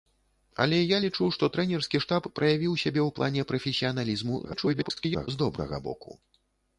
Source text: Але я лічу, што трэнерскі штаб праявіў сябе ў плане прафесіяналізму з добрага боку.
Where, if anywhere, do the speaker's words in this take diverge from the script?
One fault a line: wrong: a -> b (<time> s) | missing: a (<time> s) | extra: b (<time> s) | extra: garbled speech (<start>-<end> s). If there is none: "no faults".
extra: garbled speech (4.4-5.3 s)